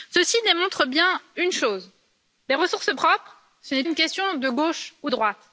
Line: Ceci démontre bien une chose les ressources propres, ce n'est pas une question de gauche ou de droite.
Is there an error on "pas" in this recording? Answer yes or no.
yes